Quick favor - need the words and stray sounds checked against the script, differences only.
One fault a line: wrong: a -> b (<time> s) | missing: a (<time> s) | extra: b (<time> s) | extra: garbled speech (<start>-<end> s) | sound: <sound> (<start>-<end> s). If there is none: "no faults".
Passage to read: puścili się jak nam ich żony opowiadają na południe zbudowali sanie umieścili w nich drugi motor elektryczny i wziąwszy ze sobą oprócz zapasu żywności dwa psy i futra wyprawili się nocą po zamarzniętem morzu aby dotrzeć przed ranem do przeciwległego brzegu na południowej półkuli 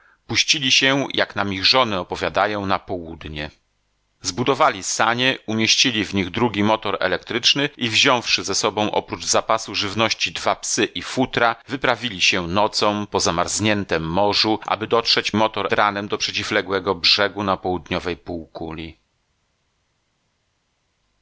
wrong: przed -> motor (15.3 s)